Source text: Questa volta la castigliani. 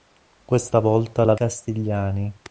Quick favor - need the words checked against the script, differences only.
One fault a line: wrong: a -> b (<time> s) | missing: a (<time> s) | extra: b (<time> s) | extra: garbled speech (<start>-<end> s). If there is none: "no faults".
no faults